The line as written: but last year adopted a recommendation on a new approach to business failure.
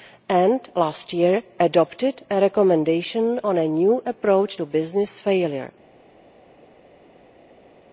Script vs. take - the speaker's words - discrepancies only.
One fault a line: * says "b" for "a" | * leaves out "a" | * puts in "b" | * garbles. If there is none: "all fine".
* says "and" for "but"